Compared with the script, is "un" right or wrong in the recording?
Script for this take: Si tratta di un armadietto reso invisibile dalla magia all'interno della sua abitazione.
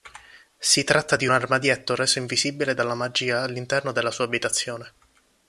wrong